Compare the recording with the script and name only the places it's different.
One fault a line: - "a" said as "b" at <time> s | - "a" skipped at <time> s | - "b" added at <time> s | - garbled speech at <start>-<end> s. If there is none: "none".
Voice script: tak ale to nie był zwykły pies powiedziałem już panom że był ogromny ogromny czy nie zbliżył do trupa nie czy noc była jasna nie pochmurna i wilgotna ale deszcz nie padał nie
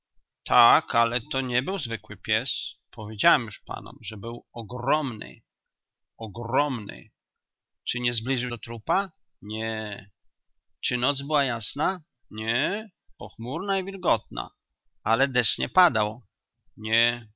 none